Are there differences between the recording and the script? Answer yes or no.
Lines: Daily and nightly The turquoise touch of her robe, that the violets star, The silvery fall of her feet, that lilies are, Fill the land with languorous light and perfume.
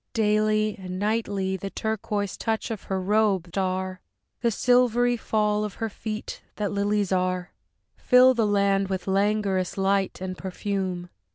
yes